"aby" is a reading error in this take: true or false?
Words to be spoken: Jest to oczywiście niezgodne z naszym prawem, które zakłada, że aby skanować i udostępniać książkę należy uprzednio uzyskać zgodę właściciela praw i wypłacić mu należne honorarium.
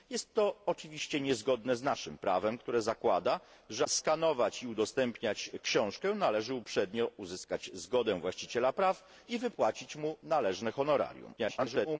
true